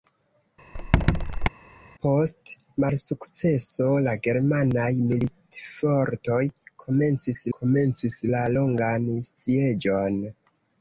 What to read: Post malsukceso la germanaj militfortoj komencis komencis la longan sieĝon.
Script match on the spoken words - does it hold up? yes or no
yes